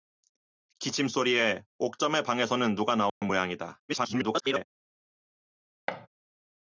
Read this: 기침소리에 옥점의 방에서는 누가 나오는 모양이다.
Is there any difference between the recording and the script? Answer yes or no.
yes